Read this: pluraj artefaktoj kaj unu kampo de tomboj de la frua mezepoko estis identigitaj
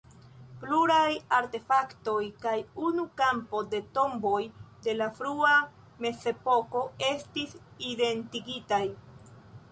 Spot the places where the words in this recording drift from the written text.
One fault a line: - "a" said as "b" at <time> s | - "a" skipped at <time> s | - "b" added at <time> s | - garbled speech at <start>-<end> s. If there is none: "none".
none